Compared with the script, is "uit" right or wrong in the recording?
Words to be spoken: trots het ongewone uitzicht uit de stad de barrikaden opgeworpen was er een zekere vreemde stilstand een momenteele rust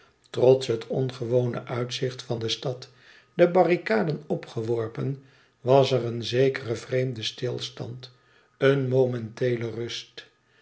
wrong